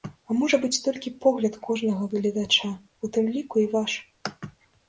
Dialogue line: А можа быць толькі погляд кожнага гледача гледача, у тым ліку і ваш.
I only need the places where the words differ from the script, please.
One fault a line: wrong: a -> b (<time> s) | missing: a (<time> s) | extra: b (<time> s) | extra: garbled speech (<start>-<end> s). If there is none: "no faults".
missing: гледача (2.7 s)